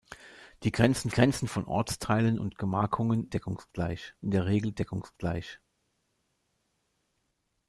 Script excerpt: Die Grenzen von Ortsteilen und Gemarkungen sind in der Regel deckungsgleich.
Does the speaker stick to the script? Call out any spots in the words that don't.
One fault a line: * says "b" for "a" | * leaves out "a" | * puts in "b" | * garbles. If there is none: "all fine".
* puts in "Grenzen"
* says "deckungsgleich" for "sind"